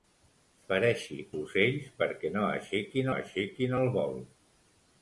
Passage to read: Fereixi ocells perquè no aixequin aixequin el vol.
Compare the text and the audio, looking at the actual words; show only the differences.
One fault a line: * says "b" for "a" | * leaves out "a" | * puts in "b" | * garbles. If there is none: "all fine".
all fine